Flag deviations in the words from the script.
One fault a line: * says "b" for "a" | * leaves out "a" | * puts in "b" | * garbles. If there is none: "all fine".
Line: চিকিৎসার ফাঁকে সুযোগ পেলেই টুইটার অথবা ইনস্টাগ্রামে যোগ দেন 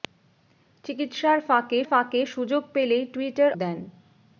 * puts in "ফাঁকে"
* leaves out "অথবা ইনস্টাগ্রামে যোগ"